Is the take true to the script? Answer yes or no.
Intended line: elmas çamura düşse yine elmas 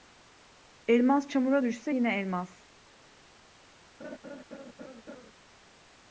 yes